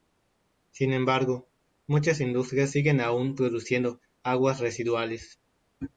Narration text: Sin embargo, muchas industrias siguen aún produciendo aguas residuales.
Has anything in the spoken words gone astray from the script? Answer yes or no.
no